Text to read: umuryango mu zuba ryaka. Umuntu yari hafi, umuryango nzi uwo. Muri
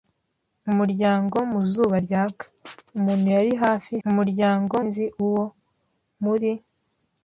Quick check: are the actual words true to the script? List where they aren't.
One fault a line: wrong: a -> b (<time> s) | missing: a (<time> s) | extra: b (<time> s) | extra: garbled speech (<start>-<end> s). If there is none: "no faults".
no faults